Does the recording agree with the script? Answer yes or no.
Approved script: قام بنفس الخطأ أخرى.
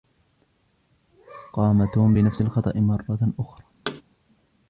no